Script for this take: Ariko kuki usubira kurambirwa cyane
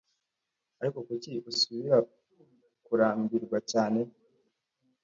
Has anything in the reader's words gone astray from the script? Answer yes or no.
no